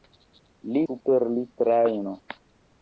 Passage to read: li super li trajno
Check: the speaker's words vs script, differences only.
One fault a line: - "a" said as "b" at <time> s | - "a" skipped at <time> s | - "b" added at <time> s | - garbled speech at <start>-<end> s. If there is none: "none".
none